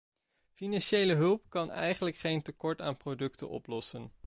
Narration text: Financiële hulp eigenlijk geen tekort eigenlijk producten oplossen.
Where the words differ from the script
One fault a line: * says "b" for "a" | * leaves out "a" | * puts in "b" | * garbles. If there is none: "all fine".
* puts in "kan"
* says "aan" for "eigenlijk"